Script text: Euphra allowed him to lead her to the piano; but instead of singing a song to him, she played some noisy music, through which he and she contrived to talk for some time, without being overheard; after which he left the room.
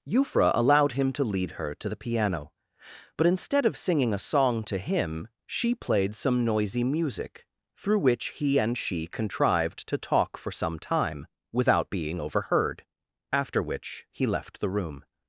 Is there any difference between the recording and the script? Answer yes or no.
no